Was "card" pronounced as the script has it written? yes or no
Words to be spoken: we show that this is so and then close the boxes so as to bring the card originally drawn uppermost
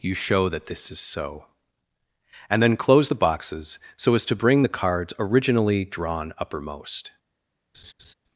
no